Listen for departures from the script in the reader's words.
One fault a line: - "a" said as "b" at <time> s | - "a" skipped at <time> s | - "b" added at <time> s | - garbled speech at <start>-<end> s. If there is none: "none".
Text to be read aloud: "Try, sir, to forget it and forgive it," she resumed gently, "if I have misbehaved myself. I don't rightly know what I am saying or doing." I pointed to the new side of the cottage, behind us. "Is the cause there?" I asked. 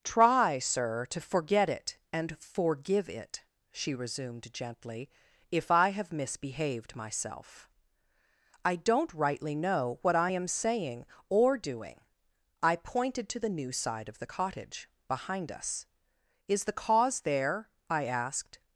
none